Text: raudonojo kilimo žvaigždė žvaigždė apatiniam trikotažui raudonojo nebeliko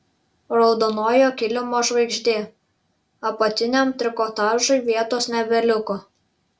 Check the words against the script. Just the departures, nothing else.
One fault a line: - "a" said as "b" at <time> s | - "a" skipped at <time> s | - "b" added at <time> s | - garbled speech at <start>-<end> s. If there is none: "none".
- "žvaigždė" skipped at 2.4 s
- "raudonojo" said as "vietos" at 4.9 s